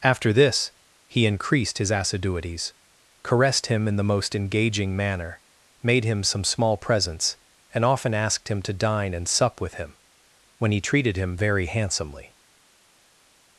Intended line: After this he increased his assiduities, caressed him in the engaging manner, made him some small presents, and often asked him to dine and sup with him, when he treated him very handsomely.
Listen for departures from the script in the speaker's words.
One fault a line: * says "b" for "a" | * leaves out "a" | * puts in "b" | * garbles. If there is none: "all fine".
* puts in "most"